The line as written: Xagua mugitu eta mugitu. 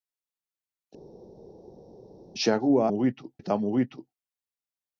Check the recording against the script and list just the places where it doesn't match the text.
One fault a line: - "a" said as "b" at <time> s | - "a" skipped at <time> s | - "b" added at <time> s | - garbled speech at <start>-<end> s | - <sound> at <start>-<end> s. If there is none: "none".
none